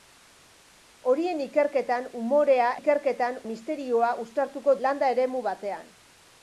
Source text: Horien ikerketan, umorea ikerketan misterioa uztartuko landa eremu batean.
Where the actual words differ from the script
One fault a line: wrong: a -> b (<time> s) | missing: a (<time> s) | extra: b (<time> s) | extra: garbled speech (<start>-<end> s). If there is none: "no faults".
no faults